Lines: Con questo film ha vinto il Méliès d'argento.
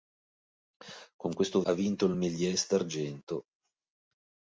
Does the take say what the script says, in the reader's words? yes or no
no